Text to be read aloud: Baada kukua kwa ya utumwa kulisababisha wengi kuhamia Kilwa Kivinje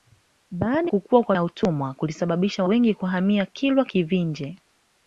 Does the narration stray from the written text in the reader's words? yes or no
no